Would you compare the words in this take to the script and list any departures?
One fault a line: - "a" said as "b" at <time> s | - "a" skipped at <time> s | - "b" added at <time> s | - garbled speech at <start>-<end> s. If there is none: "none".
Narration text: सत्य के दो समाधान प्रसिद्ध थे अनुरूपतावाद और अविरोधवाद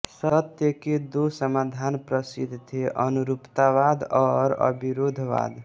none